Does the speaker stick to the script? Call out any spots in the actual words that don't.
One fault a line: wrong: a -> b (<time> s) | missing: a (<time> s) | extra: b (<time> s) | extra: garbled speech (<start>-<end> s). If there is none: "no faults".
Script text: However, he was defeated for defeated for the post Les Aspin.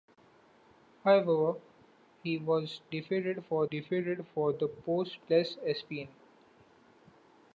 no faults